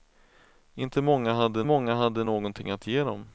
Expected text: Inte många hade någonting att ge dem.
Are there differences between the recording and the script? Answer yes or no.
yes